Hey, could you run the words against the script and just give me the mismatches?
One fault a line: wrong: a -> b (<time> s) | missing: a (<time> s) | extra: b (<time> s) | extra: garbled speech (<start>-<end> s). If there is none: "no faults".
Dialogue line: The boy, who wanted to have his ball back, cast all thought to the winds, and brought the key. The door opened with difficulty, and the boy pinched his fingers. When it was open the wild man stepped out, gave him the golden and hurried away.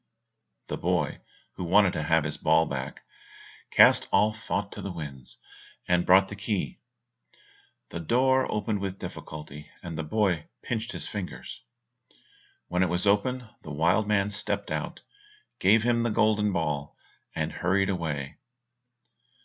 extra: ball (16.5 s)